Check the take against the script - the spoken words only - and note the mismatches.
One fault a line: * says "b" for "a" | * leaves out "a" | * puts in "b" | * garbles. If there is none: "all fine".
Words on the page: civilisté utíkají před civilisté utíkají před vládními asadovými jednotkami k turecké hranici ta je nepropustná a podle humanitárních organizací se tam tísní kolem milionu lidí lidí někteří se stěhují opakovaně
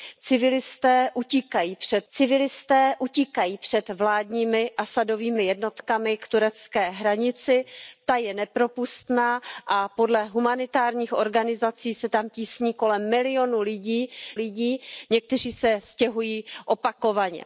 all fine